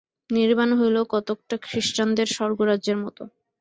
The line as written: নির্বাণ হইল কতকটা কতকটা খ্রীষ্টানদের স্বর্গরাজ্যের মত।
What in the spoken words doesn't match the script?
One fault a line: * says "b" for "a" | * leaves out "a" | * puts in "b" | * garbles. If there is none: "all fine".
* leaves out "কতকটা"